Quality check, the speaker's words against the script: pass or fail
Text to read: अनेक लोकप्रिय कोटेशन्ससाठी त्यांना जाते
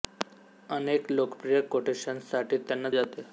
pass